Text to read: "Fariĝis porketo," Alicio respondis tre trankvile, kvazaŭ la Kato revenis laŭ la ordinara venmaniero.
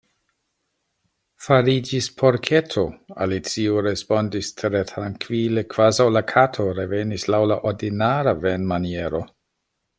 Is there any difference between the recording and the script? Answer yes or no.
no